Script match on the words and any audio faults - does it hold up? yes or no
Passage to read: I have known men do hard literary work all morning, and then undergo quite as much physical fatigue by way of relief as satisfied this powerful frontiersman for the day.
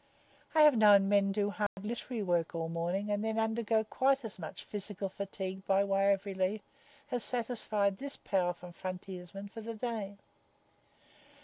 no